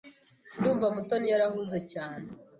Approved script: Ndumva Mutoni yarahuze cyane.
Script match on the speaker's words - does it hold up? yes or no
yes